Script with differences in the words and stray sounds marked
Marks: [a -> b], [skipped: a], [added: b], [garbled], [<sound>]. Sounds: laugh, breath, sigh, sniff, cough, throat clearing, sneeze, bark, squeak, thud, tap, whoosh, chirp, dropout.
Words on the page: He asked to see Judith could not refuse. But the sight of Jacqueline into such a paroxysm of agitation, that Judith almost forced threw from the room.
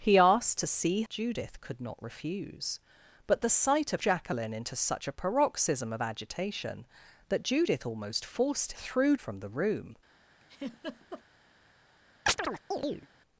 He asked to see Judith could not refuse. But the sight of Jacqueline into such a paroxysm of agitation, that Judith almost forced threw from the room. [laugh] [chirp]